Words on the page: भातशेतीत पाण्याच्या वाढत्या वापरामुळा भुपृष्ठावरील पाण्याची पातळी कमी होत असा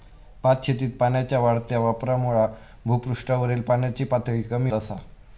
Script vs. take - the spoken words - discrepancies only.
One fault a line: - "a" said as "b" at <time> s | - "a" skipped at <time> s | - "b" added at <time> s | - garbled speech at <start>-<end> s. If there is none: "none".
- "होत" skipped at 4.7 s